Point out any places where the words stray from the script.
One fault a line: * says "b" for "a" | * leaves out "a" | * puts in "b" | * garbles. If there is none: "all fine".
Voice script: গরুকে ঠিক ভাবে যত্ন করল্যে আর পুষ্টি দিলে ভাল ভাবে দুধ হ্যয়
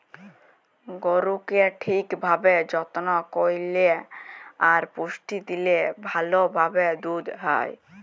all fine